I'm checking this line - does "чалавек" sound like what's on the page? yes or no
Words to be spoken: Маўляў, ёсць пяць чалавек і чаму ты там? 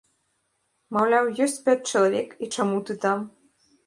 yes